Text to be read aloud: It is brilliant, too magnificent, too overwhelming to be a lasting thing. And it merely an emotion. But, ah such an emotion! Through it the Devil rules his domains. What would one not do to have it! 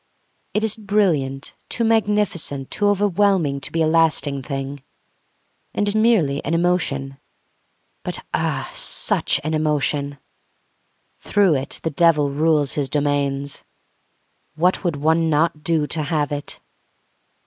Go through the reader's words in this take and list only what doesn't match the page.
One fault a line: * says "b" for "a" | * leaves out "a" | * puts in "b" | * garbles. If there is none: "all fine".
all fine